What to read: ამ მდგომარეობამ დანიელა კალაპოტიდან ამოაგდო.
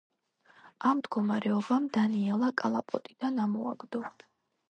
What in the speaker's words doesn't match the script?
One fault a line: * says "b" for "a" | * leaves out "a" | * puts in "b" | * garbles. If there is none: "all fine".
all fine